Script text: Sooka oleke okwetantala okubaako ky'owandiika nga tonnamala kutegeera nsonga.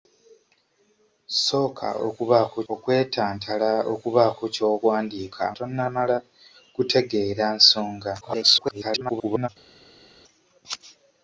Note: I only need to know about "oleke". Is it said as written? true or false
false